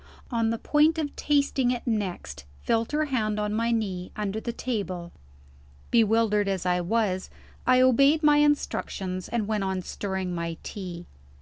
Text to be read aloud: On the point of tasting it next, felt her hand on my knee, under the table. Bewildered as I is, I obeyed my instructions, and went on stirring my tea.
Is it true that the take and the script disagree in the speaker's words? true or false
true